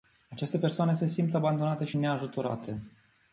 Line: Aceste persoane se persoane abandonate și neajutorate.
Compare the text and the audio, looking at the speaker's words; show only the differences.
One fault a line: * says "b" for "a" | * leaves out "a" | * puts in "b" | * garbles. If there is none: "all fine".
* says "simt" for "persoane"